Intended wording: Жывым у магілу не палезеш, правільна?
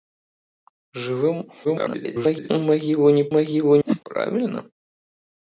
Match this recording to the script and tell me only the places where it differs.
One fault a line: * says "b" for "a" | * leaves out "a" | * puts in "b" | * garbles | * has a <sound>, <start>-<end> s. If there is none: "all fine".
* garbles
* says "магілу" for "палезеш"
* has a whoosh, 3.9-4.0 s